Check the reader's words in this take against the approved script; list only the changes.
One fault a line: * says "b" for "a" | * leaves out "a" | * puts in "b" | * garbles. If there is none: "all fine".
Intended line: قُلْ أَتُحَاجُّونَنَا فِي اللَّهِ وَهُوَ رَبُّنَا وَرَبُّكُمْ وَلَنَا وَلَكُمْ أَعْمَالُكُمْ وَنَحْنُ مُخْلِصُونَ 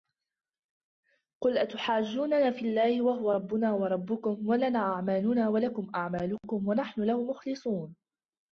* puts in "أَعْمَالُنَا"
* puts in "لَهُ"